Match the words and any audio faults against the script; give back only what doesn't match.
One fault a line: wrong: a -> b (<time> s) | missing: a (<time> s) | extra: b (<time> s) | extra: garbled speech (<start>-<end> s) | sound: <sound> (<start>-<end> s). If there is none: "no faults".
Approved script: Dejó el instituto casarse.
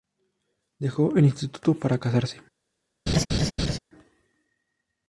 extra: para (1.8 s)
sound: laugh (3.1-3.8 s)